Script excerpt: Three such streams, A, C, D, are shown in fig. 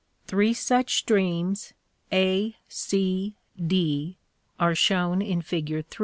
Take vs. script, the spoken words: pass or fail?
pass